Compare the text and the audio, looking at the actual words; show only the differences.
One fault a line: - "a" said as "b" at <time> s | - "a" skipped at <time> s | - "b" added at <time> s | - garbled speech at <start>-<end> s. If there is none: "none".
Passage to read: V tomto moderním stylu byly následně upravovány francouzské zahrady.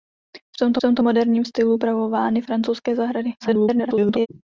- "tomto" added at 0.8 s
- "byly následně" skipped at 1.8 s
- garbled speech at 3.4-4.3 s